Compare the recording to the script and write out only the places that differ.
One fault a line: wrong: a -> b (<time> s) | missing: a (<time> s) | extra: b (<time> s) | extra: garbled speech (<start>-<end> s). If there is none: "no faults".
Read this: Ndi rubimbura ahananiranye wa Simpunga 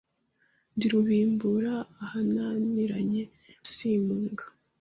missing: wa (3.2 s)